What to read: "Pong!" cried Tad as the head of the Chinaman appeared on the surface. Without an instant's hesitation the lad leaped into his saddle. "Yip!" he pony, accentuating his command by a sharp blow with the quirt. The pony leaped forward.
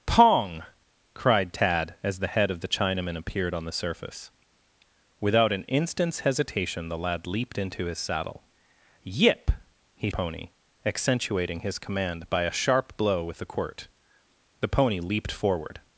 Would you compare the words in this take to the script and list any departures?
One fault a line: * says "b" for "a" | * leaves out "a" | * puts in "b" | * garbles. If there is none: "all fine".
all fine